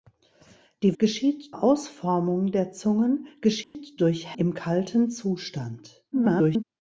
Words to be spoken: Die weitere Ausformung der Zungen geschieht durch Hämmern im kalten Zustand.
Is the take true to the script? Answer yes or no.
no